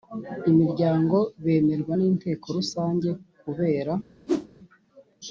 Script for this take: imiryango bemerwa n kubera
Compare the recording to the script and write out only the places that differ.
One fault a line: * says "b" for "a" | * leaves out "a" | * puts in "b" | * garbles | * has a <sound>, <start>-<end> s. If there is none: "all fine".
* puts in "inteko Rusange"
* has a whoosh, 4.3-4.5 s